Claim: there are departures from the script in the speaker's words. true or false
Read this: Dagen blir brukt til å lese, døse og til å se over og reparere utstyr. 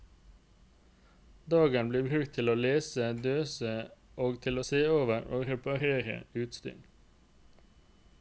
false